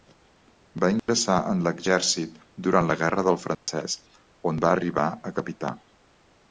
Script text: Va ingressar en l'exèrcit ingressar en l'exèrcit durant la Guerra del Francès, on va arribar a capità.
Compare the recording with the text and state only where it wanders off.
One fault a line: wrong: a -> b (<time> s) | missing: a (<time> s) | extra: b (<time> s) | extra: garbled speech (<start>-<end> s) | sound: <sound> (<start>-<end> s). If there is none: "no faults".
sound: dropout (1.0-1.1 s)
missing: ingressar en l'exèrcit (2.4 s)
sound: dropout (3.5-3.7 s)